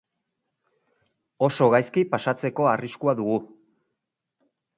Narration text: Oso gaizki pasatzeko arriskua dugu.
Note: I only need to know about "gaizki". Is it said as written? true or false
true